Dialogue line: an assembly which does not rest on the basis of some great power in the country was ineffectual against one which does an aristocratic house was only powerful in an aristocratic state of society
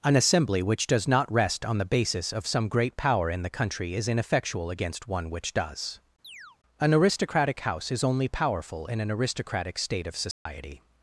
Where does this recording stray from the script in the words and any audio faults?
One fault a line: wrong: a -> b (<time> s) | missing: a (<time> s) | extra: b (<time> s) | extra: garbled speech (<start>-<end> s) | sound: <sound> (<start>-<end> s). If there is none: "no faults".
wrong: was -> is (3.9 s)
sound: chirp (6.2-6.6 s)
wrong: was -> is (7.9 s)
sound: dropout (10.3-10.5 s)